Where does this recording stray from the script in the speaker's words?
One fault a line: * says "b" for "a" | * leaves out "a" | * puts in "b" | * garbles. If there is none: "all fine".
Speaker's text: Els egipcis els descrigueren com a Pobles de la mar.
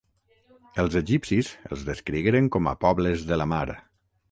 all fine